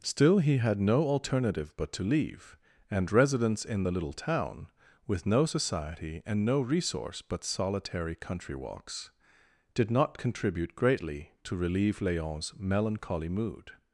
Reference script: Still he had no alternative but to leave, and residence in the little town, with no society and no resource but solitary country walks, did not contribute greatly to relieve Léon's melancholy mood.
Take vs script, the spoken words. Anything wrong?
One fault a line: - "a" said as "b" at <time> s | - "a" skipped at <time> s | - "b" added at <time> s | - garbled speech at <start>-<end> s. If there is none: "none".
none